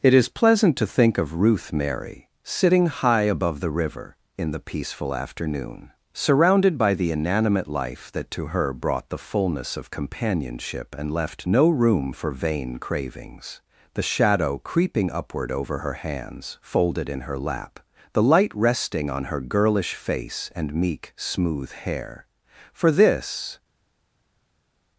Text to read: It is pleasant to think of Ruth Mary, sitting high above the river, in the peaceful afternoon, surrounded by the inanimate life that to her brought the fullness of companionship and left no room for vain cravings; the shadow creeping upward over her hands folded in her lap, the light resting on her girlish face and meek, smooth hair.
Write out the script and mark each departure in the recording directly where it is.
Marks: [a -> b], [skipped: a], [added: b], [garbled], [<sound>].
It is pleasant to think of Ruth Mary, sitting high above the river, in the peaceful afternoon, surrounded by the inanimate life that to her brought the fullness of companionship and left no room for vain cravings; the shadow creeping upward over her hands folded in her lap, the light resting on her girlish face and meek, smooth hair. [added: For this]